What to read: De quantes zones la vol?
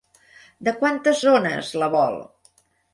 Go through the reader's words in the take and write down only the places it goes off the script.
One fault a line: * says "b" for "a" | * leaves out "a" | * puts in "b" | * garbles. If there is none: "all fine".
all fine